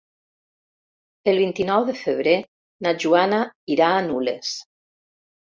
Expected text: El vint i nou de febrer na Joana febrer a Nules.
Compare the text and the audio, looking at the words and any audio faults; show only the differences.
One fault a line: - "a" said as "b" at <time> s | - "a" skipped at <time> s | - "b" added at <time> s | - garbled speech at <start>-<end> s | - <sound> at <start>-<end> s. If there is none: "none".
- "febrer" said as "irà" at 3.8 s